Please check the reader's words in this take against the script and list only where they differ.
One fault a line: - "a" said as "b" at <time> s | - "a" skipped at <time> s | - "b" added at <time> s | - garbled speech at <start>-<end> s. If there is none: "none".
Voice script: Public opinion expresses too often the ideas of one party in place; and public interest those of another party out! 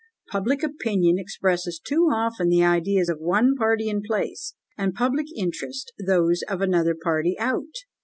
none